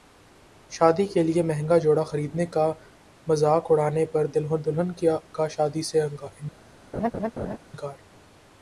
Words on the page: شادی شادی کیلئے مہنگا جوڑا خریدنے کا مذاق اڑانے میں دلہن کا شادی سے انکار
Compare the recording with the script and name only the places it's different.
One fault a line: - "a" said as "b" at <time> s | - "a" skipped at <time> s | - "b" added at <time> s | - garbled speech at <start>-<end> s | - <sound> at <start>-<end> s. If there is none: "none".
- "شادی" skipped at 1.1 s
- "میں" said as "پر" at 4.1 s
- laugh at 6.9-7.6 s